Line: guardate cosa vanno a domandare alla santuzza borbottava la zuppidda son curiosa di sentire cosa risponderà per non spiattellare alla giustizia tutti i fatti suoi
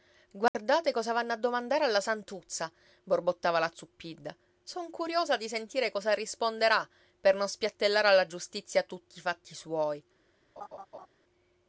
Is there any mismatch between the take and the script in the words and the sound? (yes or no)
yes